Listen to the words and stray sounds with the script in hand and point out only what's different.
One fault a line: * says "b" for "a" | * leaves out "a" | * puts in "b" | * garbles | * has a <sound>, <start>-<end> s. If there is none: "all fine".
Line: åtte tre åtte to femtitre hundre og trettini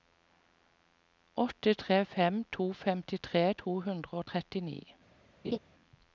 * says "fem" for "åtte"
* puts in "to"
* has a laugh, 5.4-5.6 s